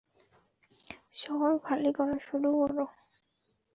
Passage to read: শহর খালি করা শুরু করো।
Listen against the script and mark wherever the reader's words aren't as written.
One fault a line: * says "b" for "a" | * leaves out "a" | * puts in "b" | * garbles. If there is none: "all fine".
all fine